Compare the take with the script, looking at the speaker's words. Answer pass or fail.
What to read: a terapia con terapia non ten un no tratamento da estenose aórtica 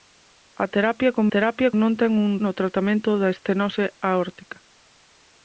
pass